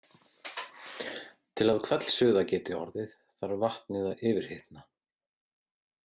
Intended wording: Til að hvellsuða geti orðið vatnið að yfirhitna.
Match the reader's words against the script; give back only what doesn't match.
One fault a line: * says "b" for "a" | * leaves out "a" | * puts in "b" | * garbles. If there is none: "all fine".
* puts in "þarf"